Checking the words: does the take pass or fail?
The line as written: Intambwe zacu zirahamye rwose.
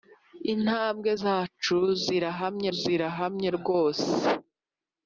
fail